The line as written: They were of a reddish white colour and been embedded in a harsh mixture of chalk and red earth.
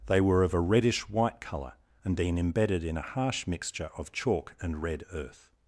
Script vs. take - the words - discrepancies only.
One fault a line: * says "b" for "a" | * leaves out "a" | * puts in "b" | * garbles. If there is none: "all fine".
all fine